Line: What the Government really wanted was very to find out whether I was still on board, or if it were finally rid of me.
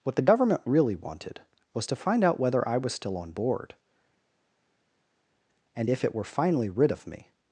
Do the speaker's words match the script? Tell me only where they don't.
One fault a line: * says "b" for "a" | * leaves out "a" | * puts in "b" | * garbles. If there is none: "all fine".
* leaves out "very"
* says "and" for "or"